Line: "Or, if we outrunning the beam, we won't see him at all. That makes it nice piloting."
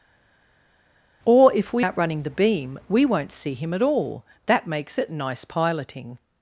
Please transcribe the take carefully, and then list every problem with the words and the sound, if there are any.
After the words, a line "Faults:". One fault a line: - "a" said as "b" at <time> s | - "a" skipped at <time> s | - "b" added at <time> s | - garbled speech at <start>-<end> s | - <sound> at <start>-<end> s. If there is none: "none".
"Or, if we outrunning the beam, we won't see him at all. That makes it nice piloting."
Faults:
none